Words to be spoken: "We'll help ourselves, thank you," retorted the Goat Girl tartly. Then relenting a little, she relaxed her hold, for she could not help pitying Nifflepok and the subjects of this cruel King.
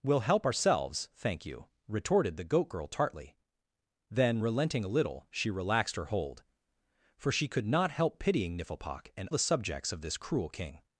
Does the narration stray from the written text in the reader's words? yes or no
no